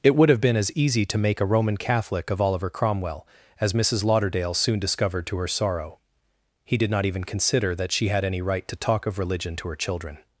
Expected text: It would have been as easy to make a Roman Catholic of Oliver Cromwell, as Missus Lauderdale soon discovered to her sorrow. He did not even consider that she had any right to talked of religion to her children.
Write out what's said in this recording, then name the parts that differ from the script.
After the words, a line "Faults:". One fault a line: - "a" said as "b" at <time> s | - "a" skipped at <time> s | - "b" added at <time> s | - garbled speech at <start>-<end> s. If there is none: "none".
It would have been as easy to make a Roman Catholic of Oliver Cromwell, as Missus Lauderdale soon discovered to her sorrow. He did not even consider that she had any right to talk of religion to her children.
Faults:
- "talked" said as "talk" at 8.8 s